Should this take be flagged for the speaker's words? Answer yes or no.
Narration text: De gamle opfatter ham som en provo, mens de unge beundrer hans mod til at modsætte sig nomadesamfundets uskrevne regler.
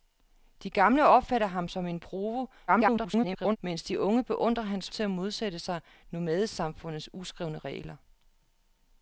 yes